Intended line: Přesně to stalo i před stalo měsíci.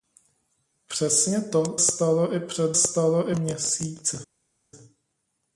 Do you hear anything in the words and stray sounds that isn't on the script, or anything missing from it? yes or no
no